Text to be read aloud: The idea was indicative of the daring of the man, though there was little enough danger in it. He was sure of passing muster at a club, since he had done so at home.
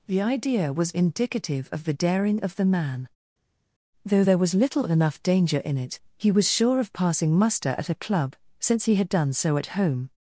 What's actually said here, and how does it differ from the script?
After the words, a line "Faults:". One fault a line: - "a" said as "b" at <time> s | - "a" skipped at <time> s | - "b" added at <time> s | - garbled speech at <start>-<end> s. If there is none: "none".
The idea was indicative of the daring of the man, though there was little enough danger in it. He was sure of passing muster at a club, since he had done so at home.
Faults:
none